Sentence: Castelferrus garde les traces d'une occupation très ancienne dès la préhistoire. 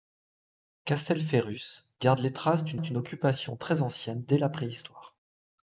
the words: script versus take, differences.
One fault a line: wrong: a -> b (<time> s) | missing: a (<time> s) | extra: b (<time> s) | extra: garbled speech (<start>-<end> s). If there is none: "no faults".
extra: d'une (2.8 s)